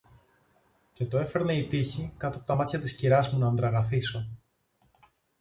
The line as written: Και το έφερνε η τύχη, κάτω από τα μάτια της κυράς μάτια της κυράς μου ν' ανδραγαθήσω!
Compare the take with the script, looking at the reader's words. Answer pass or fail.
fail